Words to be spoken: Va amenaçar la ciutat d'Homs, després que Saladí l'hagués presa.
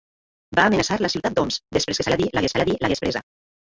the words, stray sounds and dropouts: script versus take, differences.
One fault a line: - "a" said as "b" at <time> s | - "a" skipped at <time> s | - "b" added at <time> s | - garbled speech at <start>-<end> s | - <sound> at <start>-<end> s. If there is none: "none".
- "Saladí l'hagués" added at 2.6 s